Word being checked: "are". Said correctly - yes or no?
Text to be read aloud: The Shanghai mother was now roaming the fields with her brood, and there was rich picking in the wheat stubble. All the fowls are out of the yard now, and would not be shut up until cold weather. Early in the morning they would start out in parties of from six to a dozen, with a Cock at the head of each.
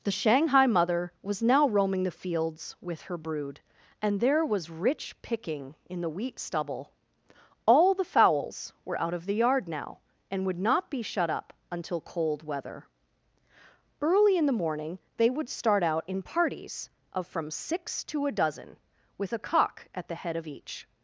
no